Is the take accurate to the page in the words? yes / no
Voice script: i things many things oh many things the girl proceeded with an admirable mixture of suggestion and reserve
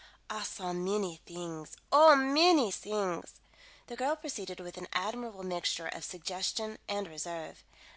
no